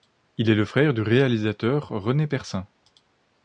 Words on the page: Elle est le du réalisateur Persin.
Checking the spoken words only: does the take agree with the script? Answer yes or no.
no